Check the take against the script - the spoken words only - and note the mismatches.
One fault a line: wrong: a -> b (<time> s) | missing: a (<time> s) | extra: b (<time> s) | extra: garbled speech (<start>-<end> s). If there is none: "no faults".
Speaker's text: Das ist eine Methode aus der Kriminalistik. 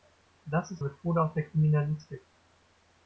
missing: eine (0.8 s)